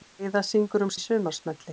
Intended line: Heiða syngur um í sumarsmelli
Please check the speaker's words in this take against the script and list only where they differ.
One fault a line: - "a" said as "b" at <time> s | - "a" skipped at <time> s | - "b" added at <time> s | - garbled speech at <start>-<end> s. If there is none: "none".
none